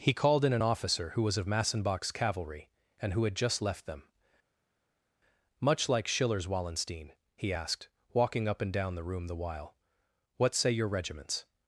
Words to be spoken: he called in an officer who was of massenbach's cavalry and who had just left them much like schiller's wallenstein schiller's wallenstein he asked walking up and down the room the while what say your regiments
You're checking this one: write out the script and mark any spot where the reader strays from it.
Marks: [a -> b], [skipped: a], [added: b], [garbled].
he called in an officer who was of massenbach's cavalry and who had just left them much like schiller's wallenstein [skipped: schiller's wallenstein] he asked walking up and down the room the while what say your regiments